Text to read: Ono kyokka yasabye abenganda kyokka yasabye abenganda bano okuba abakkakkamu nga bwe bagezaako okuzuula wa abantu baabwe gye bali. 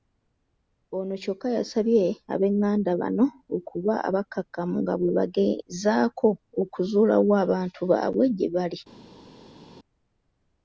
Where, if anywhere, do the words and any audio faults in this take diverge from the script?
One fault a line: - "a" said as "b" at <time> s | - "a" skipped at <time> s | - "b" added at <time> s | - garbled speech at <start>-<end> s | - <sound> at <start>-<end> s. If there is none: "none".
- "kyokka yasabye abenganda" skipped at 2.9 s